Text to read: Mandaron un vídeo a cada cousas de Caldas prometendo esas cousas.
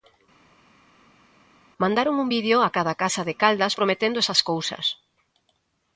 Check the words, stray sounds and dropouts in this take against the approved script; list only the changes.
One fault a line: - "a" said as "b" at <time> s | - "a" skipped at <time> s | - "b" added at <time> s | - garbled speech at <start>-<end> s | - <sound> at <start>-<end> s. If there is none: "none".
- "cousas" said as "casa" at 3.0 s